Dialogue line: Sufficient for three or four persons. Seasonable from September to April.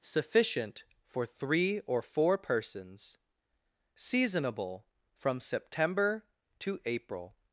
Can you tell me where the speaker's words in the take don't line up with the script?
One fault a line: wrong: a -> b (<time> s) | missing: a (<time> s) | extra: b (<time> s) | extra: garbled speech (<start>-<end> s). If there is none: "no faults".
no faults